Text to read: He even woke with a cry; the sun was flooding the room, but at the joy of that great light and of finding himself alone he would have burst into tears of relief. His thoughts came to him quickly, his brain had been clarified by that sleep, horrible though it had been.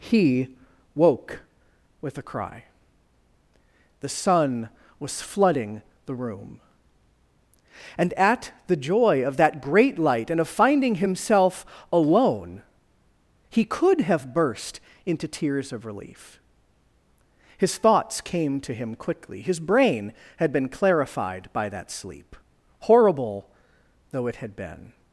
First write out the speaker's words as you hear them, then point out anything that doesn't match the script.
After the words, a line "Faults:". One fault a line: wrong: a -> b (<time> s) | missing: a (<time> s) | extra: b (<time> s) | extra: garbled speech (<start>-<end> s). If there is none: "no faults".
He woke with a cry; the sun was flooding the room, and at the joy of that great light and of finding himself alone he could have burst into tears of relief. His thoughts came to him quickly, his brain had been clarified by that sleep, horrible though it had been.
Faults:
missing: even (0.5 s)
wrong: but -> and (8.0 s)
wrong: would -> could (13.6 s)